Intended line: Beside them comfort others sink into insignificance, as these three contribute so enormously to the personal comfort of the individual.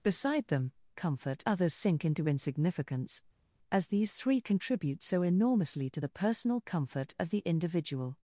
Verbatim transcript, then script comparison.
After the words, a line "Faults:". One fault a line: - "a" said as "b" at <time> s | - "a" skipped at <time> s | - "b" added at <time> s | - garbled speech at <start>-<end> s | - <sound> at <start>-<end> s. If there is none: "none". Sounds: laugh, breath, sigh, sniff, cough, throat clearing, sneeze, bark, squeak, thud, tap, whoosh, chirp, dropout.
Beside them comfort others sink into insignificance, as these three contribute so enormously to the personal comfort of the individual.
Faults:
none